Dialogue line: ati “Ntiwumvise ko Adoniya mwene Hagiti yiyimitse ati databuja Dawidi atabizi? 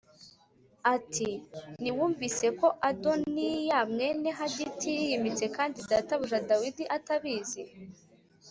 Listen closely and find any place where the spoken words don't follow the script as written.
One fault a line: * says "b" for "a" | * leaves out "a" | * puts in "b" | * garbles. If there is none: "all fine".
* says "kandi" for "ati"